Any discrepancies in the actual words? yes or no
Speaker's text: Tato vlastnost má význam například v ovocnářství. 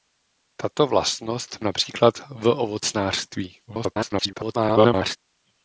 yes